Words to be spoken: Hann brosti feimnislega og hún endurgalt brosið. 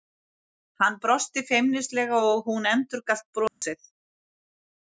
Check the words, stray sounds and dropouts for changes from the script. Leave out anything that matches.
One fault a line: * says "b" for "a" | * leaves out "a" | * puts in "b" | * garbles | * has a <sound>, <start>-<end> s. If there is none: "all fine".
* has a dropout, 3.5-3.6 s